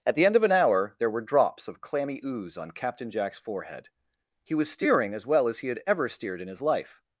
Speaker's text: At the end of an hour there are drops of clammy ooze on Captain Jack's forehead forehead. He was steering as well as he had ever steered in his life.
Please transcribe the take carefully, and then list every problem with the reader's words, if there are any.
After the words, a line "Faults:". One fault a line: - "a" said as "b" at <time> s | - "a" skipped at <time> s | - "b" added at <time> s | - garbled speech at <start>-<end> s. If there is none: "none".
At the end of an hour there were drops of clammy ooze on Captain Jack's forehead. He was steering as well as he had ever steered in his life.
Faults:
- "are" said as "were" at 1.1 s
- "forehead" skipped at 3.9 s